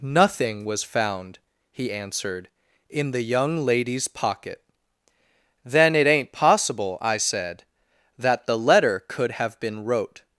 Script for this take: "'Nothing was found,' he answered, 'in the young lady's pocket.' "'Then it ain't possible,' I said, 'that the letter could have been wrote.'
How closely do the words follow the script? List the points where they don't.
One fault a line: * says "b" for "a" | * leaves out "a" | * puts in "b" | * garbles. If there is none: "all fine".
all fine